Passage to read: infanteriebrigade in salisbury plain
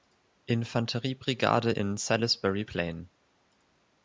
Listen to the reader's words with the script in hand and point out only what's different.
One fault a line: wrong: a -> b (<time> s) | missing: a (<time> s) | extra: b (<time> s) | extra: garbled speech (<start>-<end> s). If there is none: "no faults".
no faults